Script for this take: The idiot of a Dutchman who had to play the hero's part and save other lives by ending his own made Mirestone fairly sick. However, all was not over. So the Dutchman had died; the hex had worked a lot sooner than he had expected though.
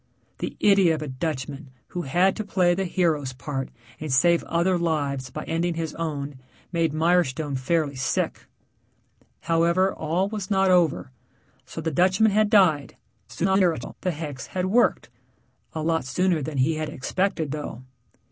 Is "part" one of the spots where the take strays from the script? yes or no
no